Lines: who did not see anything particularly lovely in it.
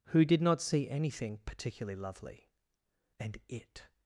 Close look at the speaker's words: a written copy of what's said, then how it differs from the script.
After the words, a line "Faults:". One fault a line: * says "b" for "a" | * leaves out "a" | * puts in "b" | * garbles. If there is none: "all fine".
who did not see anything particularly lovely and it.
Faults:
* says "and" for "in"